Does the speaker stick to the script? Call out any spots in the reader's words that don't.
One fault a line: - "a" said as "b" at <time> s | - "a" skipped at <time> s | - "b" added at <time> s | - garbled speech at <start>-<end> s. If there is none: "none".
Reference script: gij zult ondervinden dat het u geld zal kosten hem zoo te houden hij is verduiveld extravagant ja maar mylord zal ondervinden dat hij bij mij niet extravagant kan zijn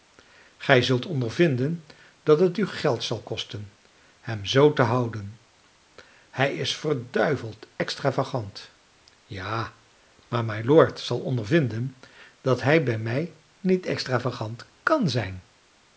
none